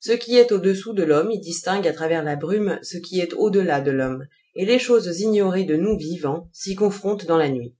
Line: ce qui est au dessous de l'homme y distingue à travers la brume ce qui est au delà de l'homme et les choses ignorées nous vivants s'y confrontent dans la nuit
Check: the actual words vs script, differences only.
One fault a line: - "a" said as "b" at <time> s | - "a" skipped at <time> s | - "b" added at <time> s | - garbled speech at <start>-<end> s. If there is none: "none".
- "de" added at 5.6 s